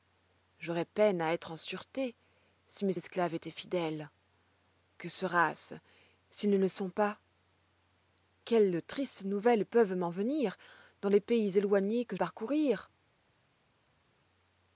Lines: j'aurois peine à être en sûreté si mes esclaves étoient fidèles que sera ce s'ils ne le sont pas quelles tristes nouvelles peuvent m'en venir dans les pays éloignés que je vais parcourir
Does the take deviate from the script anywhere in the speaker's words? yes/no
yes